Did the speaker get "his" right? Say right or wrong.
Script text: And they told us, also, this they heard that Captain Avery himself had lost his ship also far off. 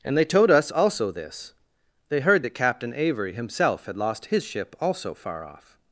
right